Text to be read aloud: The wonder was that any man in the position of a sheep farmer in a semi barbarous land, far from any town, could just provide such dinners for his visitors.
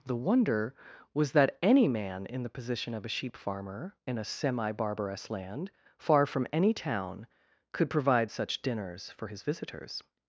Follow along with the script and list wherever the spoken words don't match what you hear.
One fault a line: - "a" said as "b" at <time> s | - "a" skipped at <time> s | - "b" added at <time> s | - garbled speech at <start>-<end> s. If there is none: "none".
- "just" skipped at 7.9 s